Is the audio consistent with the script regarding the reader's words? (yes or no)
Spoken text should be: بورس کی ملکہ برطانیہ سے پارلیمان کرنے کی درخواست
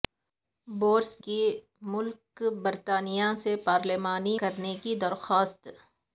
yes